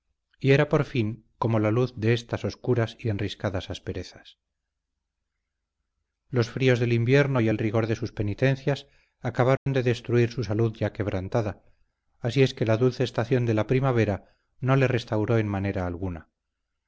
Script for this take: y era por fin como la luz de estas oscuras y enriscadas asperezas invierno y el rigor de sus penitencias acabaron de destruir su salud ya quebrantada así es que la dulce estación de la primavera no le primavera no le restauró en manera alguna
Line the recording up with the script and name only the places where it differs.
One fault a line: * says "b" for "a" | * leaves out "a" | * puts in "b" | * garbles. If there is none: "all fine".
* puts in "los fríos del"
* leaves out "primavera no le"